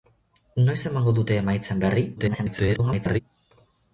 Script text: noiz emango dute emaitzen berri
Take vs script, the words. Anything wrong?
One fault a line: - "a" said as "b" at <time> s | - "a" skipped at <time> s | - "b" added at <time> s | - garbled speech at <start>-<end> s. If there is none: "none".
- garbled speech at 2.2-3.2 s